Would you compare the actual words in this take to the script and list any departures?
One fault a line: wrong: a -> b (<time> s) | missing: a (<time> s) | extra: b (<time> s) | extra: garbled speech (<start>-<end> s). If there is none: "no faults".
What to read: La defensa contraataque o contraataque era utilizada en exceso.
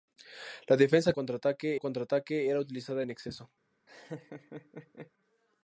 no faults